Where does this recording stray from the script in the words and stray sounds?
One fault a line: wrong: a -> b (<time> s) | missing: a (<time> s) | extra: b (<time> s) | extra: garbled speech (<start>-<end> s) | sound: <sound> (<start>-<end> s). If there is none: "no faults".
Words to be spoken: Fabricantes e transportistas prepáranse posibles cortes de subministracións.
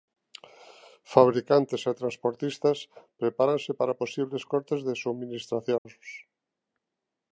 extra: para (3.8 s)
sound: dropout (5.8-5.9 s)